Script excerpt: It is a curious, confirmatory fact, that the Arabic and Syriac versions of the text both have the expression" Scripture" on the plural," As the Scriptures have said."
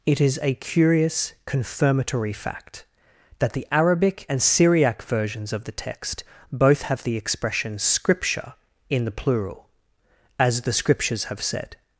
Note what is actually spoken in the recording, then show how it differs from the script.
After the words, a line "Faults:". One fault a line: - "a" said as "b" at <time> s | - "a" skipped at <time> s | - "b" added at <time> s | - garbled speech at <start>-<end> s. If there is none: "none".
It is a curious, confirmatory fact, that the Arabic and Syriac versions of the text both have the expression" Scripture" in the plural," As the Scriptures have said."
Faults:
- "on" said as "in" at 8.9 s